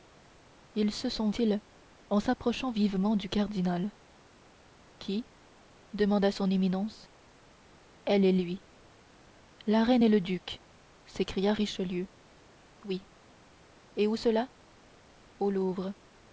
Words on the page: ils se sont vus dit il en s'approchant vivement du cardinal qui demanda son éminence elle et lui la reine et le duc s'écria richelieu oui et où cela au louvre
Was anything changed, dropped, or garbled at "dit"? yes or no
yes